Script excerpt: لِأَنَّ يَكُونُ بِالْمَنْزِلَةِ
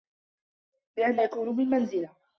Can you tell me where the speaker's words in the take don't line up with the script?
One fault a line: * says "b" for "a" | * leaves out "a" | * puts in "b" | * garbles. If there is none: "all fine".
all fine